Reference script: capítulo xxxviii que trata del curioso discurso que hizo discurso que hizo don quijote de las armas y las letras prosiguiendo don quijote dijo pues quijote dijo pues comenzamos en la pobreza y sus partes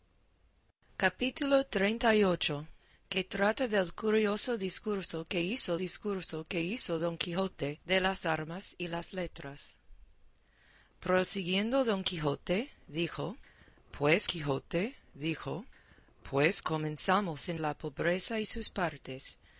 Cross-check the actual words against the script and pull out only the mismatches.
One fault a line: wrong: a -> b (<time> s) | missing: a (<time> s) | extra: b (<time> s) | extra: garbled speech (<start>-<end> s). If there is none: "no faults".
no faults